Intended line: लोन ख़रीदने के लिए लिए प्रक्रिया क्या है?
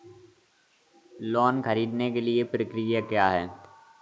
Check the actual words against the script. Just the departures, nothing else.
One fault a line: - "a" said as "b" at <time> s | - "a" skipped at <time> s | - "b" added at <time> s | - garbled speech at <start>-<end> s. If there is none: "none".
- "लिए" skipped at 2.4 s